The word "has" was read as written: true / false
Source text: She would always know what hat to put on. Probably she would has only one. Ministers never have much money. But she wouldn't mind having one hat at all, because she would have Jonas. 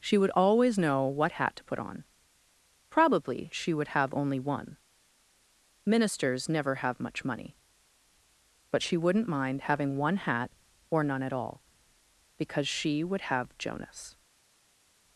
false